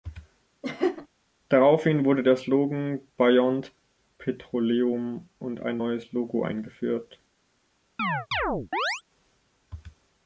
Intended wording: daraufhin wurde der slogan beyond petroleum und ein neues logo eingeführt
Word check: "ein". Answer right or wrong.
right